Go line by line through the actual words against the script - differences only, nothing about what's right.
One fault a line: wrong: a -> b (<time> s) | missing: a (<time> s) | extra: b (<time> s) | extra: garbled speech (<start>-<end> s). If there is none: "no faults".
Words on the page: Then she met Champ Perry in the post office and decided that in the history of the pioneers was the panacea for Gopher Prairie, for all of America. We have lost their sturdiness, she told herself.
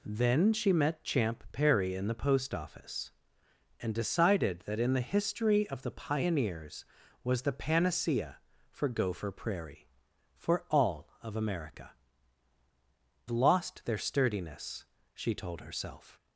missing: We have (11.9 s)